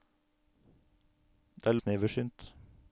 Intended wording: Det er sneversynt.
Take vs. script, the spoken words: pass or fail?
pass